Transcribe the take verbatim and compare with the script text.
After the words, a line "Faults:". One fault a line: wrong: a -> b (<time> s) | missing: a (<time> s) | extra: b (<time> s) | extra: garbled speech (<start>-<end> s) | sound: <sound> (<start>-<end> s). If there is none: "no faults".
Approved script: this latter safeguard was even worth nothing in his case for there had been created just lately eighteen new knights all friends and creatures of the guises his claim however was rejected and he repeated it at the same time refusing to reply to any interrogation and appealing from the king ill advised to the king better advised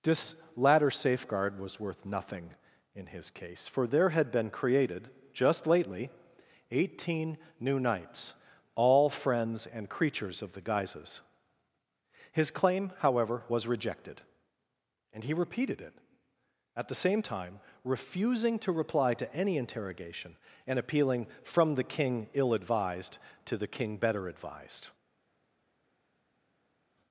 this latter safeguard was worth nothing in his case for there had been created just lately eighteen new knights all friends and creatures of the guises his claim however was rejected and he repeated it at the same time refusing to reply to any interrogation and appealing from the king ill advised to the king better advised
Faults:
missing: even (1.8 s)